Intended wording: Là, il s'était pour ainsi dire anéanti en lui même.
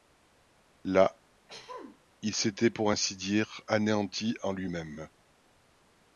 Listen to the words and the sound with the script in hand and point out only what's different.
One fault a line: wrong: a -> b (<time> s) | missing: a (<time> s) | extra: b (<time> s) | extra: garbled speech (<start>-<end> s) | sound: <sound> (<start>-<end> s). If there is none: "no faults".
sound: throat clearing (1.5-2.0 s)